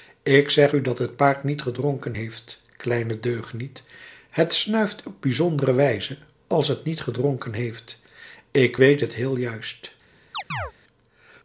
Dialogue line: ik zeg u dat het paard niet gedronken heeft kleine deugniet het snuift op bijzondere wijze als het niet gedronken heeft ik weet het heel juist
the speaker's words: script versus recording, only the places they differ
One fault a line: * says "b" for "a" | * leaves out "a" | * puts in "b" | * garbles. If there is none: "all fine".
all fine